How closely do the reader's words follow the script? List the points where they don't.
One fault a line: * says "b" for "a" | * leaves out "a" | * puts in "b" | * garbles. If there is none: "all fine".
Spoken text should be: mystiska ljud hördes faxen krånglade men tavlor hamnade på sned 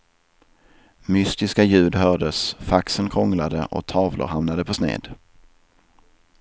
* says "och" for "men"